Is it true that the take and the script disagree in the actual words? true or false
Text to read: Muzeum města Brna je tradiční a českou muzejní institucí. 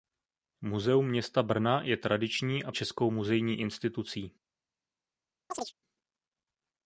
false